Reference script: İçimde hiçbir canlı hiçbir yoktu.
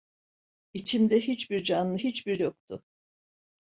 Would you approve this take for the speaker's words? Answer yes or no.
yes